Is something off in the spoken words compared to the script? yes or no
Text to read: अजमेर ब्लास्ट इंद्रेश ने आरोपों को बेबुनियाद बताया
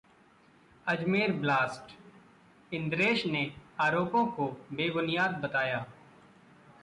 no